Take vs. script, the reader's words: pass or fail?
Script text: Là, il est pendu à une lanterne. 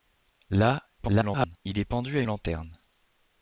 fail